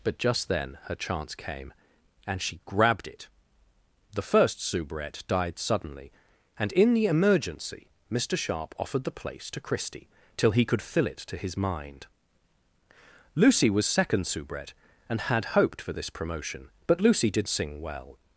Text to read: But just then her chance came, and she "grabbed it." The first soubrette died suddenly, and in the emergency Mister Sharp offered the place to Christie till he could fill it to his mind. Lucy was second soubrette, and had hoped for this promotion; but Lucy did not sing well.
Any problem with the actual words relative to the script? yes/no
yes